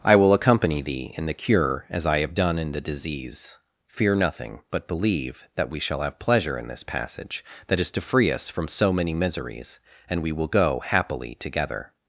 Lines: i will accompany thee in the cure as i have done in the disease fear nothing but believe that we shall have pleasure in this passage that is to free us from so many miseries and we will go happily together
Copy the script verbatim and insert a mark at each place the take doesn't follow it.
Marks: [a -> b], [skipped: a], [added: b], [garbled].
i will accompany thee in the cure as i have done in the disease fear nothing but believe that we shall have pleasure in this passage that is to free us from so many miseries and we will go happily together